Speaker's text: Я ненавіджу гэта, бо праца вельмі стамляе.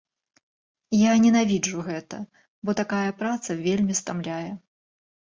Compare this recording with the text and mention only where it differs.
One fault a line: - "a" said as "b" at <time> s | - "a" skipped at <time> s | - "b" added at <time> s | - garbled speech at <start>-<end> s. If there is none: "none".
- "такая" added at 2.8 s